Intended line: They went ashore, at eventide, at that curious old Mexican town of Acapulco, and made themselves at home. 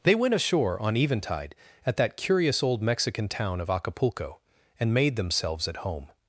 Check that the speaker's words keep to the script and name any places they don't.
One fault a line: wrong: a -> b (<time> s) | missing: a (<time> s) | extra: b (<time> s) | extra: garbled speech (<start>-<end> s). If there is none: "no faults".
wrong: at -> on (0.8 s)